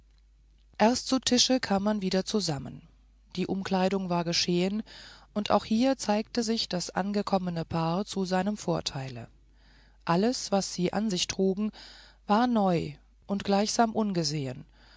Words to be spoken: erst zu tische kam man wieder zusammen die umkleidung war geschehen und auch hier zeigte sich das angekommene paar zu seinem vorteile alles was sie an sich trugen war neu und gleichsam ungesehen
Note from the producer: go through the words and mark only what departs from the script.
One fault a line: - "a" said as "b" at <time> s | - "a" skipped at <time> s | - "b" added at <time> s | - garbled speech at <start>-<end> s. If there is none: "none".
none